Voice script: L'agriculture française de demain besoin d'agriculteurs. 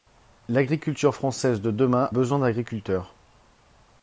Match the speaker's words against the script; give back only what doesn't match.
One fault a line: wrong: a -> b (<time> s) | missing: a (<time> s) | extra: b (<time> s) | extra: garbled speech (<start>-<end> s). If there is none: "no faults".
no faults